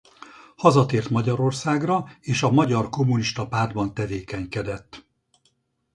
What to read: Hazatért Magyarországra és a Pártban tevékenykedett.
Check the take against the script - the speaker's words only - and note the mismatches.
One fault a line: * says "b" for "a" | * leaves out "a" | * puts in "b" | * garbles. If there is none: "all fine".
* puts in "Magyar Kommunista"